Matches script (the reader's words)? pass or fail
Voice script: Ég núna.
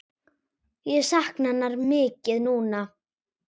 fail